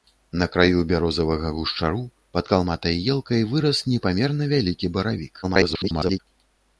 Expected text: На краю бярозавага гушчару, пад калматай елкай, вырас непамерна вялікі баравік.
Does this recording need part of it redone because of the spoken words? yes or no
yes